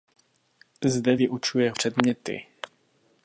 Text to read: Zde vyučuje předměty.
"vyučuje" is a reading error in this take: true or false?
false